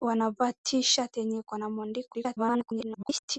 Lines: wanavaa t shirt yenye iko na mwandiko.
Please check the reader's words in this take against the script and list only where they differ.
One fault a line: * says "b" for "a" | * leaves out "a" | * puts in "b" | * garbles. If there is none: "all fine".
* garbles